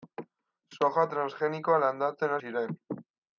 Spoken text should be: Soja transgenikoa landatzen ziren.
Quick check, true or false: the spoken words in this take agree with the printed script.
true